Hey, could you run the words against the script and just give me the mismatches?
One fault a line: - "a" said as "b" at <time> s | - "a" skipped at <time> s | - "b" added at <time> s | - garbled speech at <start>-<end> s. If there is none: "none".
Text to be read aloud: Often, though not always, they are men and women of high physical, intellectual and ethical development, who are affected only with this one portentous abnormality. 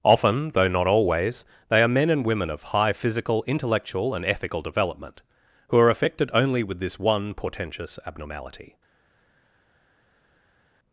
none